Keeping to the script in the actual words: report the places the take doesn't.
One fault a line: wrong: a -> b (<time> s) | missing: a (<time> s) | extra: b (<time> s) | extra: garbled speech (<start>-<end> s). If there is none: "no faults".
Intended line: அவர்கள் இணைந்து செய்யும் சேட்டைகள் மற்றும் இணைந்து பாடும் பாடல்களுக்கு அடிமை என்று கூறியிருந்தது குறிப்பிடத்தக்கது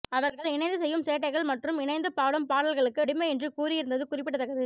no faults